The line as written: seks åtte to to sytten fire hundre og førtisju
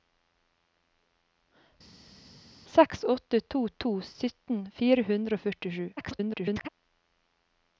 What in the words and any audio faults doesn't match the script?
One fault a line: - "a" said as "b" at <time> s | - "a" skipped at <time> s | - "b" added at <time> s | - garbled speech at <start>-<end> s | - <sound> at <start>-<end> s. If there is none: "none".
- garbled speech at 6.0-6.7 s